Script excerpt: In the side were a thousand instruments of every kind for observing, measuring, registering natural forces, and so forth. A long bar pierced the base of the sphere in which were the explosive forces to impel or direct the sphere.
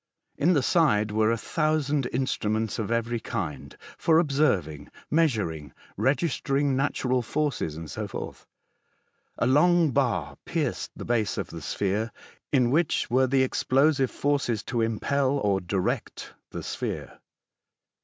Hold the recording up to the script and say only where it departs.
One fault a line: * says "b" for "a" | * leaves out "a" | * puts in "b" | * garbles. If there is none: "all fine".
all fine